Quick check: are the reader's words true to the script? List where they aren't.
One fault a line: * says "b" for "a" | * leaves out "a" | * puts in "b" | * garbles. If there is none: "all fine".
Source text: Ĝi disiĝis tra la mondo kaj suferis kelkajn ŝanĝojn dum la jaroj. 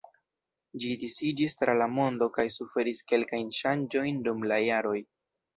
all fine